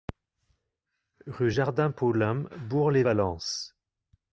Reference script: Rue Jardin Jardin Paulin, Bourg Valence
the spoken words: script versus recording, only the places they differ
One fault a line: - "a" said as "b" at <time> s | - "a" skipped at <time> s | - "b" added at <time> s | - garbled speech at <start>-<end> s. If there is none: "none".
- "Jardin" skipped at 1.9 s
- "lès" added at 2.9 s